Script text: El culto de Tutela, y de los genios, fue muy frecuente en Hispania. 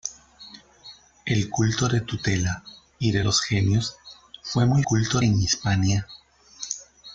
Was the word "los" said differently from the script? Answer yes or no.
no